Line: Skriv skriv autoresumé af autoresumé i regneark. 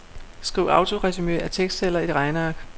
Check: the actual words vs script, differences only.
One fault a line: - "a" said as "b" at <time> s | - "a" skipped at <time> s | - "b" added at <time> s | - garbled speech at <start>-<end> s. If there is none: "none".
- "skriv" skipped at 0.7 s
- "autoresumé" said as "tekstceller" at 1.5 s